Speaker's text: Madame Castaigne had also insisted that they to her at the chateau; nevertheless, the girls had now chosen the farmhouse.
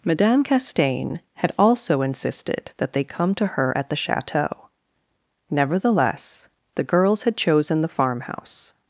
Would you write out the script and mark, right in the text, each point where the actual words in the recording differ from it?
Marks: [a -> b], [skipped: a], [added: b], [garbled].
Madame Castaigne had also insisted that they [added: come] to her at the chateau; nevertheless, the girls had [skipped: now] chosen the farmhouse.